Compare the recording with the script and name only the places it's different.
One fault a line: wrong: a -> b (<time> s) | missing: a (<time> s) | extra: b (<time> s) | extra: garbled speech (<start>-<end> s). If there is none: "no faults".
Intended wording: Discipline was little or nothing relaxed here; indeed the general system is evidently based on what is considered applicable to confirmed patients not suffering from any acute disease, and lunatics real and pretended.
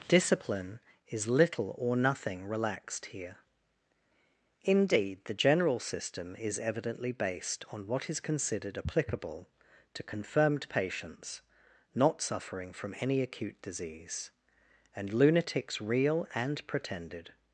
wrong: was -> is (1.1 s)